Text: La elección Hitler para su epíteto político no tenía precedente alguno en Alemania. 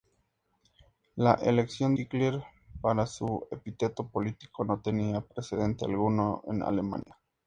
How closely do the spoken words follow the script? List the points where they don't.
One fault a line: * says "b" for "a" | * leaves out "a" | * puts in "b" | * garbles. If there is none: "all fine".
all fine